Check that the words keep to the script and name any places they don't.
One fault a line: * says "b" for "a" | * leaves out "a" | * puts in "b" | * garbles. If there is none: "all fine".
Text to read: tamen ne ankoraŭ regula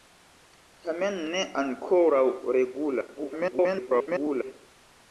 * garbles